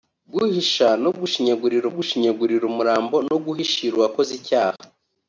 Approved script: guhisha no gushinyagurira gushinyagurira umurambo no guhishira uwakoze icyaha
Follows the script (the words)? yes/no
yes